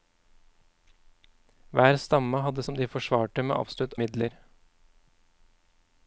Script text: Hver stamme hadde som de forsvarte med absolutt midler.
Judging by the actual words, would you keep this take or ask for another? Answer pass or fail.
pass